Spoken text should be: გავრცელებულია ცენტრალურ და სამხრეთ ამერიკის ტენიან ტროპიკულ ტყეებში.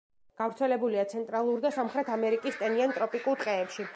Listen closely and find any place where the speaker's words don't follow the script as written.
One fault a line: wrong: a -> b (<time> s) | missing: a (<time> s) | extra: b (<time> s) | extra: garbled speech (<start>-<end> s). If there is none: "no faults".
no faults